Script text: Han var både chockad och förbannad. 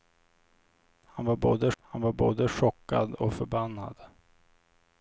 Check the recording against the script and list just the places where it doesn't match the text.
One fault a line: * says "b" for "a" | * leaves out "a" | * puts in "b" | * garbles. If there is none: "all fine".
* puts in "han var både"